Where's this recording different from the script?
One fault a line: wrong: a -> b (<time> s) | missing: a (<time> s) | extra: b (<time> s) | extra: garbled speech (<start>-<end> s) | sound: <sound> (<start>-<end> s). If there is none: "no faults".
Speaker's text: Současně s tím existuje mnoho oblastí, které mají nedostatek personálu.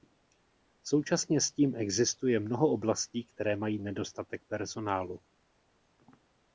no faults